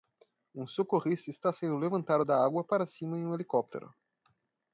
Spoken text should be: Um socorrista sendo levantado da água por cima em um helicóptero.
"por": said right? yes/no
no